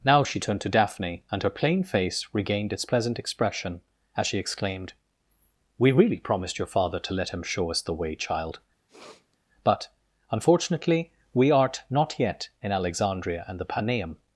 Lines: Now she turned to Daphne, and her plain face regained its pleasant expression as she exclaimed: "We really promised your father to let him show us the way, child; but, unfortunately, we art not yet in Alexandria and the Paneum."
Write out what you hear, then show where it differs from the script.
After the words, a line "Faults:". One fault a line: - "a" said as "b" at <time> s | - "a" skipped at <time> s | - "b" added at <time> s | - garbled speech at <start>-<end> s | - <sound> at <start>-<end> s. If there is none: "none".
Now she turned to Daphne, and her plain face regained its pleasant expression as she exclaimed: "We really promised your father to let him show us the way, child; but, unfortunately, we art not yet in Alexandria and the Paneum."
Faults:
- sniff at 8.9-9.4 s